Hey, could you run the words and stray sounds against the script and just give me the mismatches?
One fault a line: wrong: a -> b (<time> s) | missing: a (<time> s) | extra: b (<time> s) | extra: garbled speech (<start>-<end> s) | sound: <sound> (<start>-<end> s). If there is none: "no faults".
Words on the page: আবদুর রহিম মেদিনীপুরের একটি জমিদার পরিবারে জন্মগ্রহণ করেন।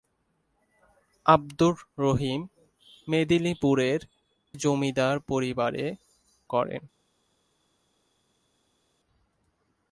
missing: একটি (4.0 s)
missing: জন্মগ্রহণ (5.9 s)